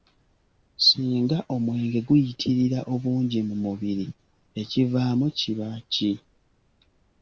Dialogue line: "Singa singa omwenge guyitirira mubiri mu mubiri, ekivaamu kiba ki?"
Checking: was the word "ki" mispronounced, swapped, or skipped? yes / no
no